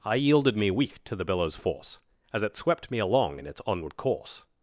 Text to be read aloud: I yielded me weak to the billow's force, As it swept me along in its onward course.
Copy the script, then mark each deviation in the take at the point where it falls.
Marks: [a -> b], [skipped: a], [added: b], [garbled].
I yielded me weak to the billow's force, As it swept me along in its onward course.